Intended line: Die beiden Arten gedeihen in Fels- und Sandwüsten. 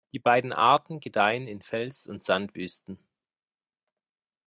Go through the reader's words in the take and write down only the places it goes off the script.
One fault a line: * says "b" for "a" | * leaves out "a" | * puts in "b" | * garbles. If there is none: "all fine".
all fine